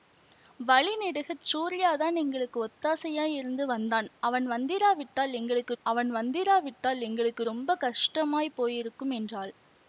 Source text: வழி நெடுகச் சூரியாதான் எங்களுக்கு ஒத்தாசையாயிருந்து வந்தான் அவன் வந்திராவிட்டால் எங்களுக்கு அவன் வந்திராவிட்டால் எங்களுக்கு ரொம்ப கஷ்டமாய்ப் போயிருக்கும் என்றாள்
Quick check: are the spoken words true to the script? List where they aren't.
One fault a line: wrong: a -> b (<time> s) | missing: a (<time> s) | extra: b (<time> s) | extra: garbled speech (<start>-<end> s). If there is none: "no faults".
no faults